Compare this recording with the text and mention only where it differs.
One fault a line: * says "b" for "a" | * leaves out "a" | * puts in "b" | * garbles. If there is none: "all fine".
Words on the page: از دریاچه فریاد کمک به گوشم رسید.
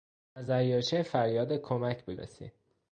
* leaves out "گوشم"